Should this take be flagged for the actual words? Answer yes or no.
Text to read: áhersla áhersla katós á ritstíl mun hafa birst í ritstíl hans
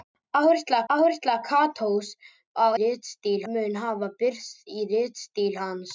no